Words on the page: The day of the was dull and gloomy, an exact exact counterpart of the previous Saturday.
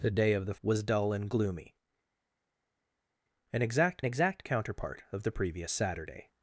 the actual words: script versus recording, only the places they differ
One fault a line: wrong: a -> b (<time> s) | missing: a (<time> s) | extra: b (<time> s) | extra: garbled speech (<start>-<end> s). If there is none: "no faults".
no faults